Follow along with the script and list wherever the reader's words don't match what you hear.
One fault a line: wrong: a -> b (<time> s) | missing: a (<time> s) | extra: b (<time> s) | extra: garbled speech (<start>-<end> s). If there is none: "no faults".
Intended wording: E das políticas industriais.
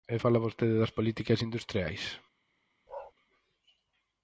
extra: fala vostede (0.2 s)